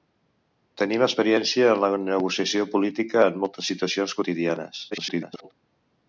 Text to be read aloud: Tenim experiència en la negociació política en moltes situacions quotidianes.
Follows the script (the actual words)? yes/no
no